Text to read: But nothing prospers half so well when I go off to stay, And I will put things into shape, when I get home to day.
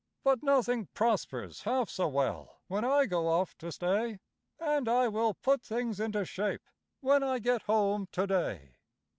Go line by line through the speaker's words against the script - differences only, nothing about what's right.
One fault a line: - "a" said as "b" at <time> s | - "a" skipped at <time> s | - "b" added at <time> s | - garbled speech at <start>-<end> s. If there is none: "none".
none